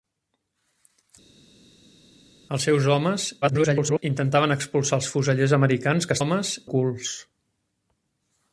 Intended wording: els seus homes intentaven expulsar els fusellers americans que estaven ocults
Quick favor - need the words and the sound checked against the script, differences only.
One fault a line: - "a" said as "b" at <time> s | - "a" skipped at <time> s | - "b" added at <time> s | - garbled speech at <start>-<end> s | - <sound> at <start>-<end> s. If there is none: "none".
- garbled speech at 3.4-4.0 s
- "estaven" said as "homes" at 6.2 s